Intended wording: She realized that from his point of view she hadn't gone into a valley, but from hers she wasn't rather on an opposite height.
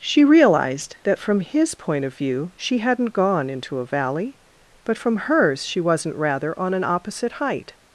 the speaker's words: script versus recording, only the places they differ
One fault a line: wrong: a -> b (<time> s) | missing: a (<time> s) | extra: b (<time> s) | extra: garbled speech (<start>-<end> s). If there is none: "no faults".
no faults